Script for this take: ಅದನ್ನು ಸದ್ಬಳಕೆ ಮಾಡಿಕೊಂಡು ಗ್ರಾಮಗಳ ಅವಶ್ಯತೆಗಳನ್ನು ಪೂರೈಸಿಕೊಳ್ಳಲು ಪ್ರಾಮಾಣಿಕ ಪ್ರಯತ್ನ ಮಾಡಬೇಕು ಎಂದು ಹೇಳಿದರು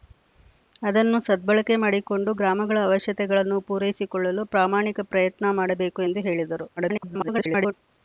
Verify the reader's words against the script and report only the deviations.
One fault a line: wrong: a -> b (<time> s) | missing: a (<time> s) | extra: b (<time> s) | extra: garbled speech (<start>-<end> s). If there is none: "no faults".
extra: garbled speech (6.8-7.7 s)